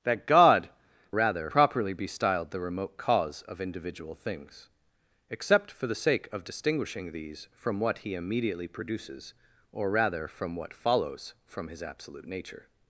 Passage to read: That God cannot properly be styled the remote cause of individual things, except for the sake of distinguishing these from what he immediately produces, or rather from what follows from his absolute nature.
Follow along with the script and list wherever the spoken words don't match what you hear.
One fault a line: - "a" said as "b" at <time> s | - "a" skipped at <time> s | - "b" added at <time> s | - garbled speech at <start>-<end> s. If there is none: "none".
- "cannot" said as "rather" at 1.1 s